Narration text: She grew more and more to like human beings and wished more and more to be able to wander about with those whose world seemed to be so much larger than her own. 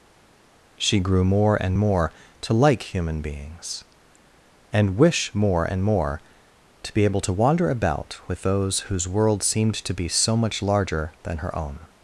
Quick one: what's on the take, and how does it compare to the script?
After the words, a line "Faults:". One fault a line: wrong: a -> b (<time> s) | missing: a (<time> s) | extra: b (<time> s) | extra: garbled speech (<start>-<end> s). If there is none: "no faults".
She grew more and more to like human beings and wish more and more to be able to wander about with those whose world seemed to be so much larger than her own.
Faults:
wrong: wished -> wish (5.0 s)